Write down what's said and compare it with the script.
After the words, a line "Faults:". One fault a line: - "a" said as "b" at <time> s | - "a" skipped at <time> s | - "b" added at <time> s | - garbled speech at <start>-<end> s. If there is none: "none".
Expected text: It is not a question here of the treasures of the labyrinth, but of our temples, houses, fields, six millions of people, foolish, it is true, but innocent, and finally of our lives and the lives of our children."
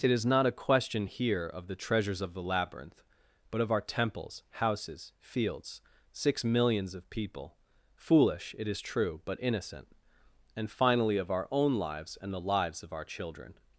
It is not a question here of the treasures of the labyrinth, but of our temples, houses, fields, six millions of people, foolish, it is true, but innocent, and finally of our own lives and the lives of our children."
Faults:
- "own" added at 11.5 s